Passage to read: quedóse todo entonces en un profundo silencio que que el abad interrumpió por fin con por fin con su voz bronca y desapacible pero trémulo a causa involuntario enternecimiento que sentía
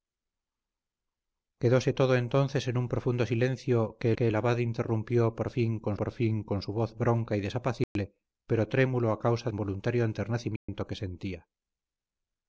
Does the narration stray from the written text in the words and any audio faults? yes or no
yes